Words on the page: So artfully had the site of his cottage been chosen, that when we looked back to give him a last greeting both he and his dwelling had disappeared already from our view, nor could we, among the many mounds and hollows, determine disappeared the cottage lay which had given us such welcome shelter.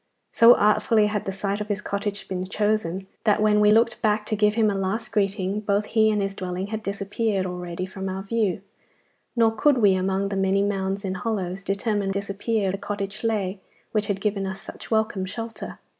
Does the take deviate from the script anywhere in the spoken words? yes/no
no